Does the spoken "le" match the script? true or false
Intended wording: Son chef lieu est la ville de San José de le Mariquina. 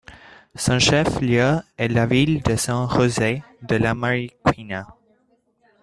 false